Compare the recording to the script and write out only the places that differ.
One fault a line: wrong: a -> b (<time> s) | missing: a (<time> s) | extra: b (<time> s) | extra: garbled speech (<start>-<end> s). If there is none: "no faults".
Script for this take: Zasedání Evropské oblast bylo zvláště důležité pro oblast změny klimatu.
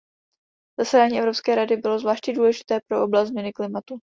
wrong: oblast -> rady (1.6 s)